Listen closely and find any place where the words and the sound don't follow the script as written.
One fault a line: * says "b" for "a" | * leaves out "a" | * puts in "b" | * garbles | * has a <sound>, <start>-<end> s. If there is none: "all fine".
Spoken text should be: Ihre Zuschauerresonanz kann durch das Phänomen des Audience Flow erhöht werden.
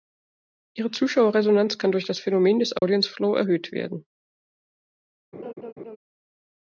* has a dropout, 2.8-2.8 s
* has a laugh, 5.3-6.0 s